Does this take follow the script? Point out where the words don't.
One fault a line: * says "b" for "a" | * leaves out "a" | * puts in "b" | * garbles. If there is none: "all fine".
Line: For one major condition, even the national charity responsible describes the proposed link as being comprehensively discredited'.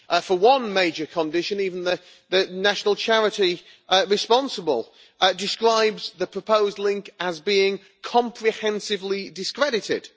all fine